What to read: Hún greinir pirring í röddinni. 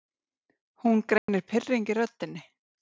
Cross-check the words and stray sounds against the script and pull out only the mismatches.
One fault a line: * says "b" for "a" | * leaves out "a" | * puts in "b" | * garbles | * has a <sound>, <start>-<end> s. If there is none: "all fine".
* has a dropout, 1.2-1.3 s